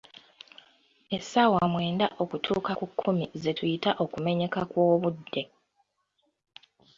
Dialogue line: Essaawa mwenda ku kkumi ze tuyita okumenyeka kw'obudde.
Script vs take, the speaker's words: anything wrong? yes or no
yes